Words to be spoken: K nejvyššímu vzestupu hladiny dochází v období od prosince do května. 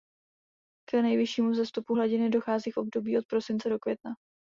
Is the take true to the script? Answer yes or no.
yes